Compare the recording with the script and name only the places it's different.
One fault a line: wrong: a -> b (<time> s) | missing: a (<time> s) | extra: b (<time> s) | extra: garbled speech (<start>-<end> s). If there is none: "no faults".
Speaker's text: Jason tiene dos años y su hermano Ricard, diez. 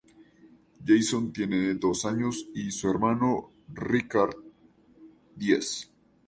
no faults